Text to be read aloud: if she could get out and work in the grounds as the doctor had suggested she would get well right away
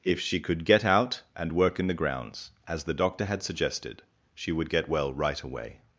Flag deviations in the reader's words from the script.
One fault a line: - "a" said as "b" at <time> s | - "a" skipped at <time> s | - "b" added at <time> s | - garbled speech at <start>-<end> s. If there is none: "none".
none